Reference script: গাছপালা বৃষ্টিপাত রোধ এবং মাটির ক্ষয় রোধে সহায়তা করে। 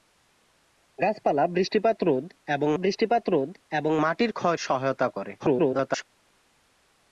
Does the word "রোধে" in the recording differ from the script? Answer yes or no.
yes